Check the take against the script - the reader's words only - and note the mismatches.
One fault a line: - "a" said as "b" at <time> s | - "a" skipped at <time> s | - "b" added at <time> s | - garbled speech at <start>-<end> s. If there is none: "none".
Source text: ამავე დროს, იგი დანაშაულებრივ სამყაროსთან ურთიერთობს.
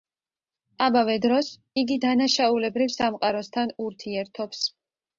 none